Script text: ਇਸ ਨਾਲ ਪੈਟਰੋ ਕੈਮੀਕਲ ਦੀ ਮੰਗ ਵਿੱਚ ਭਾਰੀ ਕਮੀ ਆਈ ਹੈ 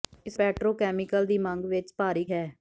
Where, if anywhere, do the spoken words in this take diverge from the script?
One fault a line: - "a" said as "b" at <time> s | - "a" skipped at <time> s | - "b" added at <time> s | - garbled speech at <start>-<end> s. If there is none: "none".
- "ਨਾਲ" skipped at 0.4 s
- "ਕਮੀ ਆਈ" skipped at 2.2 s